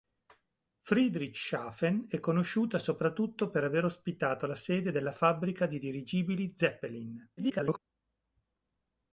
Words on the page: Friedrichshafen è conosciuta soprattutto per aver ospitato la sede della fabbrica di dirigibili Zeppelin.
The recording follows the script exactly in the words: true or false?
false